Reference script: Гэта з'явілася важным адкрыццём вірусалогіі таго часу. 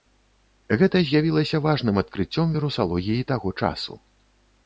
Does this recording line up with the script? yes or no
yes